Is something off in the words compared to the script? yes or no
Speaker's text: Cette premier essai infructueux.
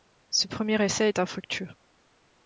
yes